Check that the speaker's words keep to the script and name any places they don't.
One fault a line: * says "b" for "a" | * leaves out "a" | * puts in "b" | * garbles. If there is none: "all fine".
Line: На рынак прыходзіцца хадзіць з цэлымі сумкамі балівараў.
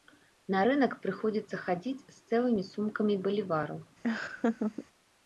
all fine